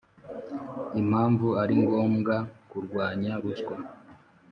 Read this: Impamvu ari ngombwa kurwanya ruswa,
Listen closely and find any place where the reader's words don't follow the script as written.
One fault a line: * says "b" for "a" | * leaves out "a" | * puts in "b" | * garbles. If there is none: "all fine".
all fine